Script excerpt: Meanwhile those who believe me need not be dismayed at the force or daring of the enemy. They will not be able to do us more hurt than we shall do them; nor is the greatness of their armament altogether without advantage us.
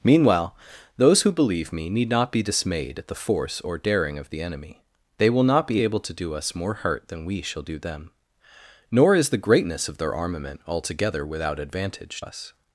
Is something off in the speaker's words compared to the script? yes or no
no